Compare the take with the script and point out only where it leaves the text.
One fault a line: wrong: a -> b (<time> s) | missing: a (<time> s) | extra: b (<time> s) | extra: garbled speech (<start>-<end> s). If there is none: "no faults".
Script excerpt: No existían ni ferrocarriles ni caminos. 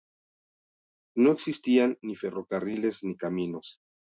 no faults